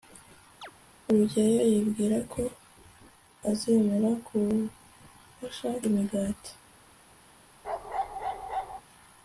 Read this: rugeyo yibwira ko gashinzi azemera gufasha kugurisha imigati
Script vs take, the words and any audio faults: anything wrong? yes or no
yes